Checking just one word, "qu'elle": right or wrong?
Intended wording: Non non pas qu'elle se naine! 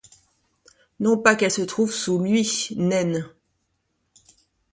right